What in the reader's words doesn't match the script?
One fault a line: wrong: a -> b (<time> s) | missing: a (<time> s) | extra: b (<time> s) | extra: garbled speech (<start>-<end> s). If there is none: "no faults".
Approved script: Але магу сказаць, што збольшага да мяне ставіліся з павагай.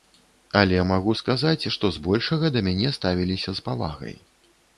no faults